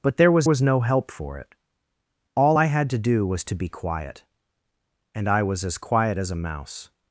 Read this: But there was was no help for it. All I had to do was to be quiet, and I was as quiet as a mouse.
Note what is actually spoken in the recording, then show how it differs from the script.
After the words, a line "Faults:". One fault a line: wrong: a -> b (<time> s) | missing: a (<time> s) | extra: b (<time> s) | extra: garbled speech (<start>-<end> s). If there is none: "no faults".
But there was was no help for it. All I had to do was to be quiet, and I was as quiet as a mouse.
Faults:
no faults